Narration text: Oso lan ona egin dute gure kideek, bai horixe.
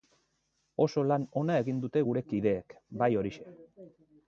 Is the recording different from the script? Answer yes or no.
no